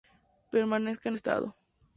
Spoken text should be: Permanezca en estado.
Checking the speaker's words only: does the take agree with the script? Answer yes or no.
yes